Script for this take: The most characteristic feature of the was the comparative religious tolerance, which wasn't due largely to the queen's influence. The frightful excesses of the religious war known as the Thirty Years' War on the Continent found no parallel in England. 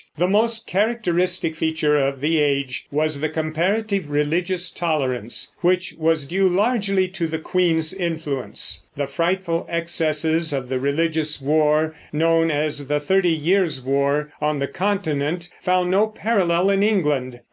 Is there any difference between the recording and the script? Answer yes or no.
yes